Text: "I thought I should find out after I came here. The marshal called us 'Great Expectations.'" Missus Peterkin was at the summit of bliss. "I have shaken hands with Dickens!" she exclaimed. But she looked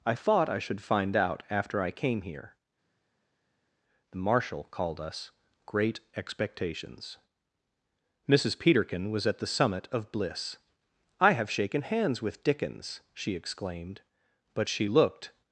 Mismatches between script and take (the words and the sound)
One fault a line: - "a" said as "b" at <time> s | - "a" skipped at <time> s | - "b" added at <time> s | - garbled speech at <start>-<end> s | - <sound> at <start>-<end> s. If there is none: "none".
none